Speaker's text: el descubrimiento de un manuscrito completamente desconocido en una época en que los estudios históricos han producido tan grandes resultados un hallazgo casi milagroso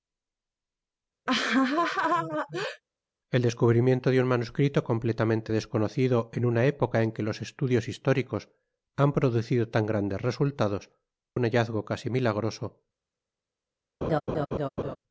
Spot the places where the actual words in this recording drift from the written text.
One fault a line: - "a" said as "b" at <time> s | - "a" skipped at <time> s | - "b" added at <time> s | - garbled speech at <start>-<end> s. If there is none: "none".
none